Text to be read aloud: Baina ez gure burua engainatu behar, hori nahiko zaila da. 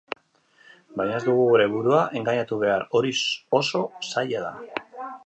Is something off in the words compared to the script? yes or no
yes